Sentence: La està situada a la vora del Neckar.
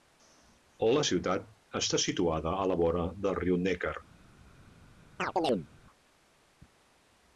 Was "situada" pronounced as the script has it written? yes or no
yes